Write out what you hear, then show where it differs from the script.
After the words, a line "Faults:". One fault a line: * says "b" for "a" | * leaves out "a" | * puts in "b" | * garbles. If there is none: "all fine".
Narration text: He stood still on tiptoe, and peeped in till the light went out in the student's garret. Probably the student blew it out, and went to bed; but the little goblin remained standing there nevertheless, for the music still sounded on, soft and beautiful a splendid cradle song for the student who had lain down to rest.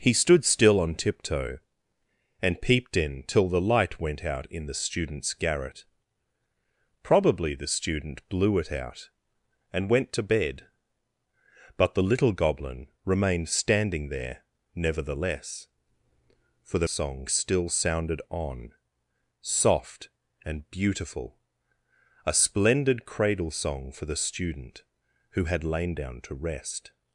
He stood still on tiptoe, and peeped in till the light went out in the student's garret. Probably the student blew it out, and went to bed; but the little goblin remained standing there nevertheless, for the song still sounded on, soft and beautiful a splendid cradle song for the student who had lain down to rest.
Faults:
* says "song" for "music"